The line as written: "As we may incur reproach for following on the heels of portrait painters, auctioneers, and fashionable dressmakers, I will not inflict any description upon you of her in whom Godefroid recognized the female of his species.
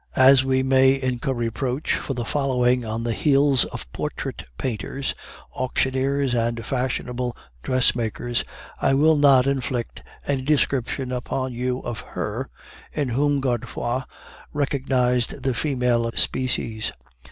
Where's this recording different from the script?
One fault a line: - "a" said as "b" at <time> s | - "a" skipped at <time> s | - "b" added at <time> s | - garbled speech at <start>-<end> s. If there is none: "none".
- "of his" skipped at 16.1 s